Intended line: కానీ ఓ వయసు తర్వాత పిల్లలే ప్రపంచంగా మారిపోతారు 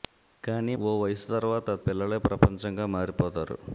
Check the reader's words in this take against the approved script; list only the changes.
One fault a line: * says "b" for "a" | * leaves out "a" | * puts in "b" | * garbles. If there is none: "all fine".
all fine